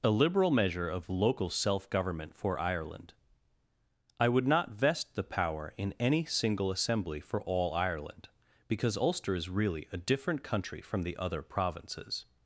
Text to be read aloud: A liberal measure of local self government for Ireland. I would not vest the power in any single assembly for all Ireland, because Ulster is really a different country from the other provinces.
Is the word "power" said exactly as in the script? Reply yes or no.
yes